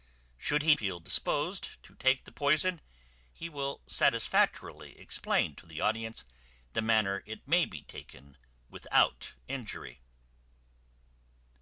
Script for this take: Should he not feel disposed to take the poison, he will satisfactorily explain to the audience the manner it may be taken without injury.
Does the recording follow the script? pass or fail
fail